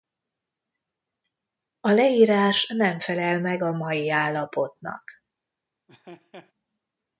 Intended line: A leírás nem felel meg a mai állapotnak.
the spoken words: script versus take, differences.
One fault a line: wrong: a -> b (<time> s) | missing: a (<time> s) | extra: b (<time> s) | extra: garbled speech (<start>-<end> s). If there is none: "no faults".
no faults